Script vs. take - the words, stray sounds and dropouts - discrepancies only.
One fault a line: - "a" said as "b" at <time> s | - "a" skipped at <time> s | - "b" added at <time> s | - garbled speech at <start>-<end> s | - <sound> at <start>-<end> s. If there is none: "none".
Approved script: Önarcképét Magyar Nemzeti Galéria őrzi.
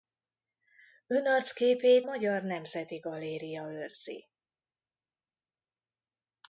none